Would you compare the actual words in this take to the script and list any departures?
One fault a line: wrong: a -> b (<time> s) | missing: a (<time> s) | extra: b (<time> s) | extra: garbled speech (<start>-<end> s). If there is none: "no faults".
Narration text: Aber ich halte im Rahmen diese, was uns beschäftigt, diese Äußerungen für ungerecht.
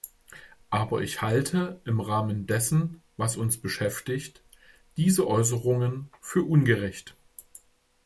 wrong: diese -> dessen (2.5 s)